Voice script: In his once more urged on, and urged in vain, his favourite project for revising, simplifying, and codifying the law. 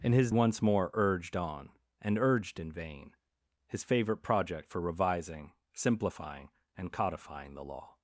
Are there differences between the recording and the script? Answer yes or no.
no